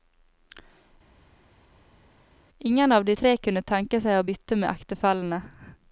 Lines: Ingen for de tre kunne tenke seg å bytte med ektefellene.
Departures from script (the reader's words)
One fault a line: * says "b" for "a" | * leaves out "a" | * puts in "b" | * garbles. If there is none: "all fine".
* says "av" for "for"